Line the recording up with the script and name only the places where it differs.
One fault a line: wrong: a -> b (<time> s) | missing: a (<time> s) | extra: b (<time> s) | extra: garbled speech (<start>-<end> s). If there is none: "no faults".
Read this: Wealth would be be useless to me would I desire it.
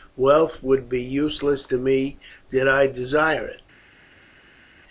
missing: be (1.0 s)
wrong: would -> did (2.5 s)